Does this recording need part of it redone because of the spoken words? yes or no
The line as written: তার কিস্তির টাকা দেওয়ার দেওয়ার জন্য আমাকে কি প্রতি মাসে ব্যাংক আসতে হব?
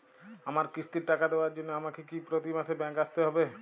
yes